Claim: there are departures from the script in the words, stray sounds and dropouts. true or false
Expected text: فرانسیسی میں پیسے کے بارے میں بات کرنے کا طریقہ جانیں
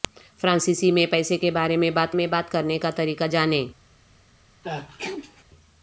true